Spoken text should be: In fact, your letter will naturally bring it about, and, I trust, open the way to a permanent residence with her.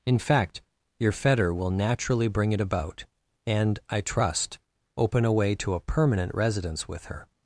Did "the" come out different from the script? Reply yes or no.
yes